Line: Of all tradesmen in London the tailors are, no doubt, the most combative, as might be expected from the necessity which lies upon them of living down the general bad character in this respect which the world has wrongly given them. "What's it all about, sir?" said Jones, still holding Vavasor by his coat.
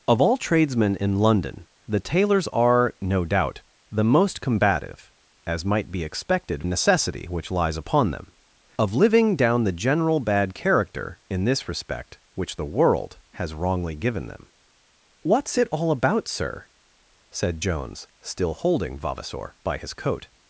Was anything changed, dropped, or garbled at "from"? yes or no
yes